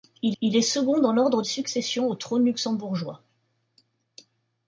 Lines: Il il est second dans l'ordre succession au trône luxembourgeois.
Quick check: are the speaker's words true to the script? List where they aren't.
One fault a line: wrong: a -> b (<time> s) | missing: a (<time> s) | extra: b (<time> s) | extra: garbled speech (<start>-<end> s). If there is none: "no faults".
no faults